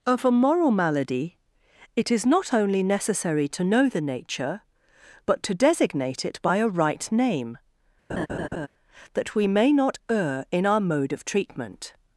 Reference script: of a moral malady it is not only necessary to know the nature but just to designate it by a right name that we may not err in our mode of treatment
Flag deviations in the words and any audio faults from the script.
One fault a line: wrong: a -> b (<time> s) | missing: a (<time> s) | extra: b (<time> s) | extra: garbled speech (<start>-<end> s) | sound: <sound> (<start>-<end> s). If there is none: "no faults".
missing: just (5.4 s)
sound: laugh (8.1-8.7 s)